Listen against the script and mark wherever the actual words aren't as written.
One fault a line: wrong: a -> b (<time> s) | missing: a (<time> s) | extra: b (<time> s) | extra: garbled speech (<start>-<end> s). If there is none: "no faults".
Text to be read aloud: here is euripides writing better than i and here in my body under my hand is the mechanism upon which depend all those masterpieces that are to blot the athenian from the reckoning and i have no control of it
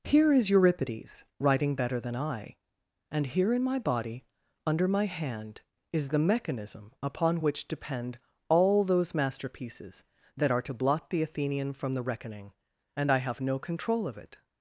no faults